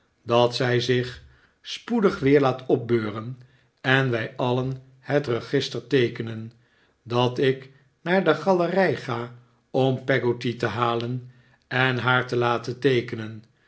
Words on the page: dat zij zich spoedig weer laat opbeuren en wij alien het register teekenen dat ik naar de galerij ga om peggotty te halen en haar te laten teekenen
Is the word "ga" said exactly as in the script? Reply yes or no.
yes